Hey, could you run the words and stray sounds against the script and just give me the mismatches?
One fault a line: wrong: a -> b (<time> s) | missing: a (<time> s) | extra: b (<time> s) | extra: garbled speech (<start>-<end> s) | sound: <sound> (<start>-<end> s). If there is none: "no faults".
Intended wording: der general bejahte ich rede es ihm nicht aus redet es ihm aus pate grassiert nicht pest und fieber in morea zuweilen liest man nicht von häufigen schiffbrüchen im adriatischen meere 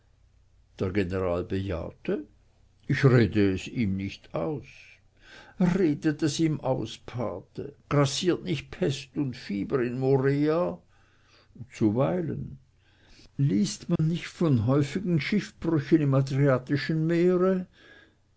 sound: dropout (14.0-14.0 s)